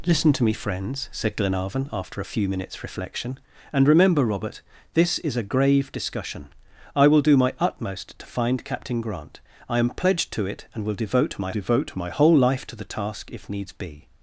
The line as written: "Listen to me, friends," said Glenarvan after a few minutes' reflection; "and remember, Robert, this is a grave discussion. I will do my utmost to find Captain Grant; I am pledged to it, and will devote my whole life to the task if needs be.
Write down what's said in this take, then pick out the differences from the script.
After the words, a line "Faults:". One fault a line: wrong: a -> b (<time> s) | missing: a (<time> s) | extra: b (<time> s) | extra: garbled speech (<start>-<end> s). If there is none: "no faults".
"Listen to me, friends," said Glenarvan after a few minutes' reflection; "and remember, Robert, this is a grave discussion. I will do my utmost to find Captain Grant; I am pledged to it, and will devote my devote my whole life to the task if needs be.
Faults:
extra: devote my (11.5 s)